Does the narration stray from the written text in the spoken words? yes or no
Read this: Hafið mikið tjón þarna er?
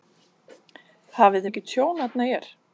no